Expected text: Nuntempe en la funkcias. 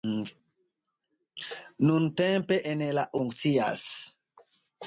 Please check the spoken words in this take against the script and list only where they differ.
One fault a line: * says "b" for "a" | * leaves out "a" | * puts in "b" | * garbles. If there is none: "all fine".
all fine